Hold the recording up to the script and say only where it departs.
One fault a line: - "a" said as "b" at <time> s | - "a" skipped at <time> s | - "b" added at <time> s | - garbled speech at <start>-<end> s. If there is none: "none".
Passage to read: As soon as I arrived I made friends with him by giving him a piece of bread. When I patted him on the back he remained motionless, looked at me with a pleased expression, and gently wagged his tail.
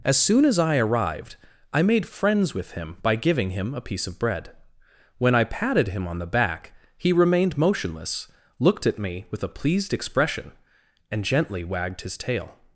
none